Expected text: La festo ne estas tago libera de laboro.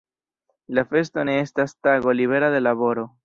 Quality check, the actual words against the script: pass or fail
pass